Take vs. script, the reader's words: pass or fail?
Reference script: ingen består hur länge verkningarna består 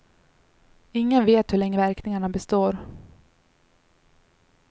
fail